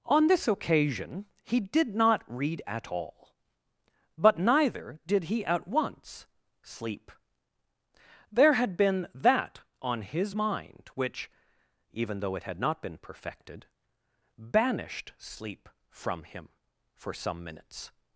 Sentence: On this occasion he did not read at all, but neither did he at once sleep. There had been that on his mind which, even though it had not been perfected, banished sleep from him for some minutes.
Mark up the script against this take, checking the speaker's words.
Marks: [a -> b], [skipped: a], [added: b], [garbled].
On this occasion he did not read at all, but neither did he at once sleep. There had been that on his mind which, even though it had not been perfected, banished sleep from him for some minutes.